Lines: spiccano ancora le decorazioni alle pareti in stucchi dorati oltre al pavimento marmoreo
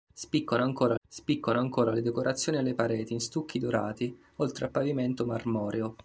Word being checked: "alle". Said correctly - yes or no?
yes